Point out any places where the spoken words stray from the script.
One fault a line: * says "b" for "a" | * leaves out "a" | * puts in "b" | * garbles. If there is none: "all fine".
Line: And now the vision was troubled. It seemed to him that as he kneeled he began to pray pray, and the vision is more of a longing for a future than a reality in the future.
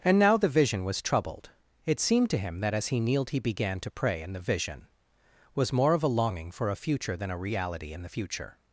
* leaves out "pray"
* says "was" for "is"